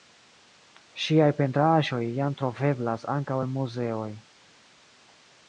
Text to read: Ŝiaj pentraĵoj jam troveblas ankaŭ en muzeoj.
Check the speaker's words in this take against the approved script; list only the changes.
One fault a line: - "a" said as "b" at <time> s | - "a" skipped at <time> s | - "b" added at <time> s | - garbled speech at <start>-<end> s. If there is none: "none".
none